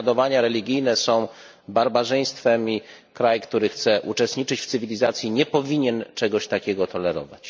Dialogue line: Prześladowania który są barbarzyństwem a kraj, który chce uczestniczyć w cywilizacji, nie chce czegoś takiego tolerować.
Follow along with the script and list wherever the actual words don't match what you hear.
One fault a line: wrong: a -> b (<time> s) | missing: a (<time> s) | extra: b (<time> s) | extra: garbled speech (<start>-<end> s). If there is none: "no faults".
wrong: który -> religijne (0.4 s)
wrong: a -> i (2.7 s)
wrong: chce -> powinien (5.5 s)